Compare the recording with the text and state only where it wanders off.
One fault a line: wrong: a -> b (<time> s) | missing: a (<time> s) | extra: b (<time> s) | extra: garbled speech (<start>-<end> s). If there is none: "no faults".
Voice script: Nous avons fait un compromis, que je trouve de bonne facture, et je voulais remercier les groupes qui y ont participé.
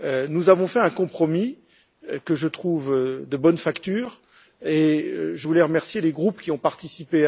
no faults